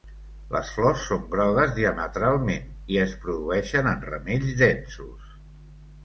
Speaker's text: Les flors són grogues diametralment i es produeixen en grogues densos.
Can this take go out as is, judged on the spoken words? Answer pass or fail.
fail